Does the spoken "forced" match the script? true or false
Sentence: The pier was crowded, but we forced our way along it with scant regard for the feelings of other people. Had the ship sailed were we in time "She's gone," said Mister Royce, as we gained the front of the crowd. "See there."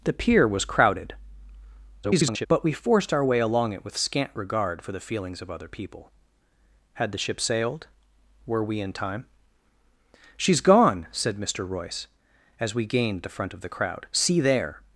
true